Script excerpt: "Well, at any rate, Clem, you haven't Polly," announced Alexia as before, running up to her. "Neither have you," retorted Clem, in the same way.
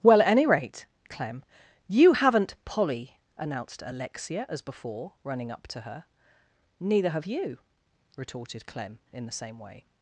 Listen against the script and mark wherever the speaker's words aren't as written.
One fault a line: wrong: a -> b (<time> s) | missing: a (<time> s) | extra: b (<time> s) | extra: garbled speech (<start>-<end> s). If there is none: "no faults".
no faults